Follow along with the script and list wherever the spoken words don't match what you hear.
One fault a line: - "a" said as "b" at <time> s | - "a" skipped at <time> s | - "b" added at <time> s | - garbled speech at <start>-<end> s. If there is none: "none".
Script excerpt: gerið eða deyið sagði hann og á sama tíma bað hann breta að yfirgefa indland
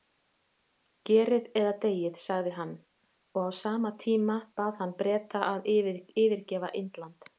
none